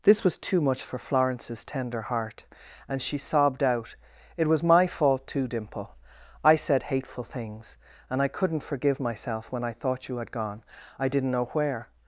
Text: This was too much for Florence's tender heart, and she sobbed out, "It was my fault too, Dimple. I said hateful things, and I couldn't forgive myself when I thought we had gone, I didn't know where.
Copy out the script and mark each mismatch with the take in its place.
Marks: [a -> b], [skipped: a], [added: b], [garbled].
This was too much for Florence's tender heart, and she sobbed out, "It was my fault too, Dimple. I said hateful things, and I couldn't forgive myself when I thought [we -> you] had gone, I didn't know where.